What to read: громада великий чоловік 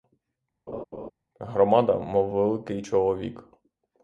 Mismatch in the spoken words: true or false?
true